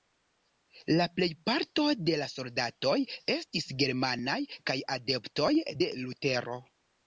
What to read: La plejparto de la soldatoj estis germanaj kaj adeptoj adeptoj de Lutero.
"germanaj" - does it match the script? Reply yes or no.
yes